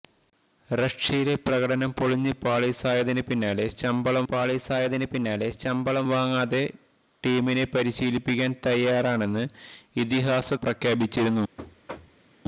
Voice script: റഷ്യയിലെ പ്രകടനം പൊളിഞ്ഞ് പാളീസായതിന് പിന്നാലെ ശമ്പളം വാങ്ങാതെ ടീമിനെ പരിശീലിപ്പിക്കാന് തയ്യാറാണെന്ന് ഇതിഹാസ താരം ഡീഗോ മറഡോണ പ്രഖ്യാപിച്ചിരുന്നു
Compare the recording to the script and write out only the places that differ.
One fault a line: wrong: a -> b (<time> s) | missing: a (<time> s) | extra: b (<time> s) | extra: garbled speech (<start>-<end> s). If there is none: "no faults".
extra: പാളീസായതിന് പിന്നാലെ ശമ്പളം (4.3 s)
missing: താരം ഡീഗോ മറഡോണ (10.5 s)